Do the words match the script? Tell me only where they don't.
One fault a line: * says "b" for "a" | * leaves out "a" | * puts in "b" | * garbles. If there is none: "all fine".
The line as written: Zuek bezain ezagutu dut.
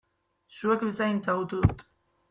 all fine